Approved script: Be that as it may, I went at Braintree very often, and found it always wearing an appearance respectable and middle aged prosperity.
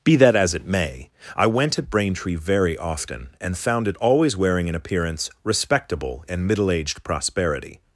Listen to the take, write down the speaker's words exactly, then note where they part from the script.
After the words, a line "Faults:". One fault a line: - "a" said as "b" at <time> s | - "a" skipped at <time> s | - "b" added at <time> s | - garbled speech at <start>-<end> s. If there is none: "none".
Be that as it may, I went at Braintree very often, and found it always wearing an appearance respectable and middle aged prosperity.
Faults:
none